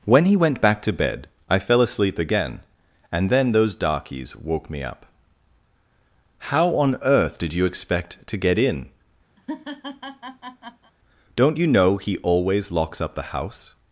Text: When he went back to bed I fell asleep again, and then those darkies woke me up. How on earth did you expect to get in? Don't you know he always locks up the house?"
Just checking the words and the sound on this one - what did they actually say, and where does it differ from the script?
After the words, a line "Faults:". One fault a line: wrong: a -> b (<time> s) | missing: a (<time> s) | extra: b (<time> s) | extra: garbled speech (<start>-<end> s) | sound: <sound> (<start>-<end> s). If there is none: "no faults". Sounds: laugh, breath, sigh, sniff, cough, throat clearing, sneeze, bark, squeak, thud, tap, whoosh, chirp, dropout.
When he went back to bed I fell asleep again, and then those darkies woke me up. How on earth did you expect to get in? Don't you know he always locks up the house?"
Faults:
sound: laugh (9.4-10.9 s)